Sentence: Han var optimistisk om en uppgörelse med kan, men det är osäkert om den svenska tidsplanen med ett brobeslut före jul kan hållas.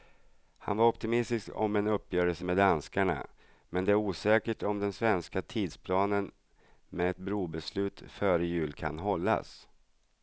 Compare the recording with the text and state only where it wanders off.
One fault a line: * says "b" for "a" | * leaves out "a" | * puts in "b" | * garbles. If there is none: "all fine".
* says "danskarna" for "kan"